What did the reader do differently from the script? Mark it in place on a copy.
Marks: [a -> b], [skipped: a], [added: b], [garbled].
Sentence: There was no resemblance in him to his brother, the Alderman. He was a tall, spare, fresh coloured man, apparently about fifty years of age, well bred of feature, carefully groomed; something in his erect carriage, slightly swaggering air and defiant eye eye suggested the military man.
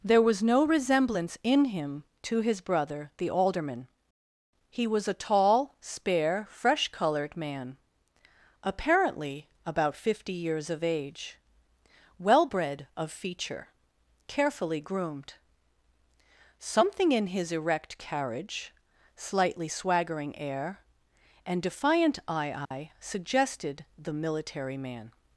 There was no resemblance in him to his brother, the Alderman. He was a tall, spare, fresh coloured man, apparently about fifty years of age, well bred of feature, carefully groomed; something in his erect carriage, slightly swaggering air and defiant eye eye suggested the military man.